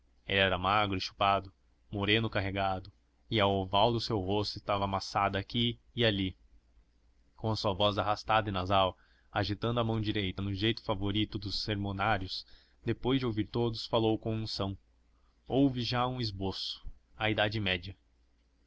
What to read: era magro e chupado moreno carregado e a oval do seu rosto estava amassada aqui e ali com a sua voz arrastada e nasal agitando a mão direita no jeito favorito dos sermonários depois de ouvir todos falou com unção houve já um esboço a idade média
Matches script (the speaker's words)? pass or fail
pass